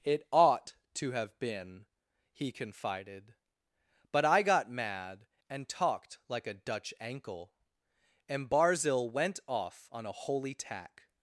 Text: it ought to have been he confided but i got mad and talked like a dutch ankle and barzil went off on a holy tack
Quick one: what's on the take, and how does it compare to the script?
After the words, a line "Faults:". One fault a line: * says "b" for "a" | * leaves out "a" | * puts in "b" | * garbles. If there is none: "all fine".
it ought to have been he confided but i got mad and talked like a dutch ankle and barzil went off on a holy tack
Faults:
all fine